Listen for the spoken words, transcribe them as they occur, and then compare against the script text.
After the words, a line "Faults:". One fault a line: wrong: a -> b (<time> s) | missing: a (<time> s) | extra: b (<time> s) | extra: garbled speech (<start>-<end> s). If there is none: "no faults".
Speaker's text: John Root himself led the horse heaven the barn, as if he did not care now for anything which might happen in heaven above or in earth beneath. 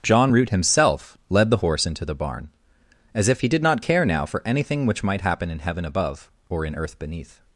John Root himself led the horse into the barn, as if he did not care now for anything which might happen in heaven above or in earth beneath.
Faults:
wrong: heaven -> into (1.9 s)